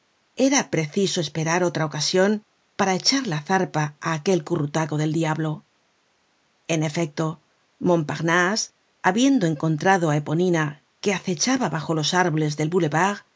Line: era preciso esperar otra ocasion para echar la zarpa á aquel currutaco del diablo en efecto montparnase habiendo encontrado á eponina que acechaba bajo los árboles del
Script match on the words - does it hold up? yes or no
yes